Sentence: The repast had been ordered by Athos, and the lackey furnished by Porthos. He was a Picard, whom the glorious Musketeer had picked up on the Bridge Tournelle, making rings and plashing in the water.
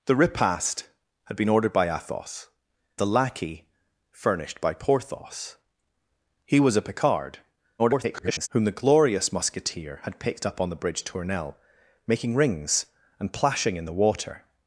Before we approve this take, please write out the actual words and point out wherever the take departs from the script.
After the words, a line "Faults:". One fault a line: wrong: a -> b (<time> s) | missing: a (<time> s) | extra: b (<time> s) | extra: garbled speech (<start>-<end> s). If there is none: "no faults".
The repast had been ordered by Athos, the lackey furnished by Porthos. He was a Picard, [garbled] whom the glorious Musketeer had picked up on the Bridge Tournelle, making rings and plashing in the water.
Faults:
missing: and (2.5 s)
extra: garbled speech (7.8-8.5 s)